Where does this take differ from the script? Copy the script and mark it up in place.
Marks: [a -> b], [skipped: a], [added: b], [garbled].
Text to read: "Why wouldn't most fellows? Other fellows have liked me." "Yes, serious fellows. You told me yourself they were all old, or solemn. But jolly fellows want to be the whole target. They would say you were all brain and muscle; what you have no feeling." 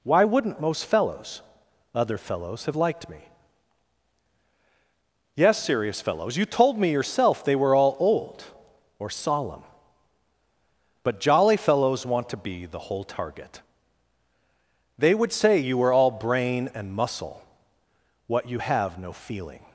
"Why wouldn't most fellows? Other fellows have liked me." "Yes, serious fellows. You told me yourself they were all old, or solemn. But jolly fellows want to be the whole target. They would say you were all brain and muscle; what you have no feeling."